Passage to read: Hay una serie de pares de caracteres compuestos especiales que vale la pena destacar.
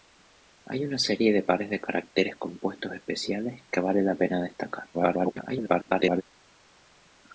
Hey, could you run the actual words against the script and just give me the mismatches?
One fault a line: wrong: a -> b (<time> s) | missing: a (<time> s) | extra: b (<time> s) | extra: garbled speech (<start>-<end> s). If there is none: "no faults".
extra: garbled speech (4.9-6.2 s)